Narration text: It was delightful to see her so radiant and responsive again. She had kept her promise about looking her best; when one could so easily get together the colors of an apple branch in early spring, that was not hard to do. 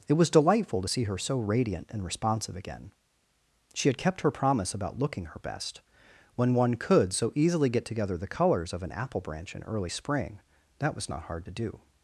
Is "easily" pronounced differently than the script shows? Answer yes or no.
no